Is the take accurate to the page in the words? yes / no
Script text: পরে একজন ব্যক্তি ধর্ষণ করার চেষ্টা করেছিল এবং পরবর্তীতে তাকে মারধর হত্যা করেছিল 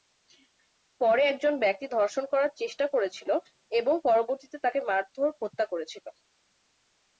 yes